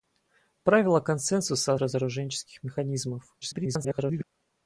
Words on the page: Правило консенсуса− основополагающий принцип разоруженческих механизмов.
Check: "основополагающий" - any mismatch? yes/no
yes